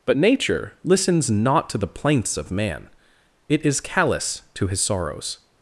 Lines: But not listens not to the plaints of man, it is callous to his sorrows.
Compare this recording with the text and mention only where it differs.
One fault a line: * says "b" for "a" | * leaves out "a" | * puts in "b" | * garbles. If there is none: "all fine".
* says "nature" for "not"